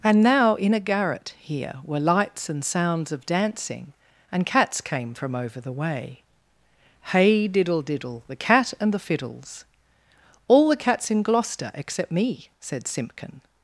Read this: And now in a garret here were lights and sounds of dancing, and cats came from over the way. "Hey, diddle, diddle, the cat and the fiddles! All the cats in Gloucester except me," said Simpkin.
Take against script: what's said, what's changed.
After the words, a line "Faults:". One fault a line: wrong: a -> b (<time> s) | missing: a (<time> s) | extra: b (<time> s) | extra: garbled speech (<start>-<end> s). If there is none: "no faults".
And now in a garret here were lights and sounds of dancing, and cats came from over the way. "Hey, diddle, diddle, the cat and the fiddles! All the cats in Gloucester except me," said Simpkin.
Faults:
no faults